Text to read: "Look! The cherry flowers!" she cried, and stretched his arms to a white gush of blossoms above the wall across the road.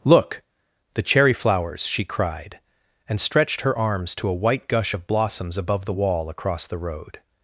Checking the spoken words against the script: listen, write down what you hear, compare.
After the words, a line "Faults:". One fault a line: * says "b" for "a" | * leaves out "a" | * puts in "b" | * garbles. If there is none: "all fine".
"Look! The cherry flowers!" she cried, and stretched her arms to a white gush of blossoms above the wall across the road.
Faults:
* says "her" for "his"